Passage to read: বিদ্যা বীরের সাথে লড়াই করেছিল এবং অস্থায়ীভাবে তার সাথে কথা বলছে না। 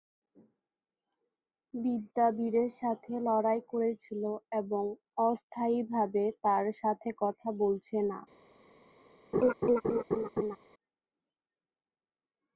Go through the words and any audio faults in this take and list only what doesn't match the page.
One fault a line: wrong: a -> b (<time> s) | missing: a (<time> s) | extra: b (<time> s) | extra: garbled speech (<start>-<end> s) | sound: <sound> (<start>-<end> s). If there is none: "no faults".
sound: laugh (9.3-10.6 s)